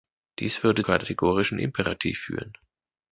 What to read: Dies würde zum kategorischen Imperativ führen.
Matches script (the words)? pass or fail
fail